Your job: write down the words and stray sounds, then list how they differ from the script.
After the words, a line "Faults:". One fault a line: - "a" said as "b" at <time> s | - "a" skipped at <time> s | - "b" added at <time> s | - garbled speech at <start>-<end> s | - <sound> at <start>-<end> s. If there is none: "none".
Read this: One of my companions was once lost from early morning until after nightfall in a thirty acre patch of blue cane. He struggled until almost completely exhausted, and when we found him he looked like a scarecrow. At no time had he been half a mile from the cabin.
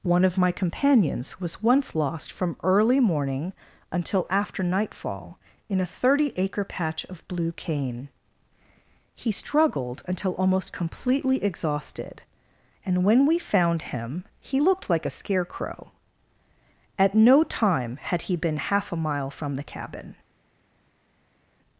One of my companions was once lost from early morning until after nightfall in a thirty acre patch of blue cane. He struggled until almost completely exhausted, and when we found him he looked like a scarecrow. At no time had he been half a mile from the cabin.
Faults:
none